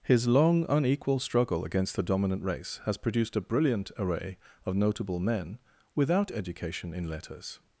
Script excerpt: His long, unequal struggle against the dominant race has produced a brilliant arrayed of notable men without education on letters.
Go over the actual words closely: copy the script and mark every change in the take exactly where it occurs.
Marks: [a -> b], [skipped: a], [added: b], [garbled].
His long, unequal struggle against the dominant race has produced a brilliant [arrayed -> array] of notable men without education [on -> in] letters.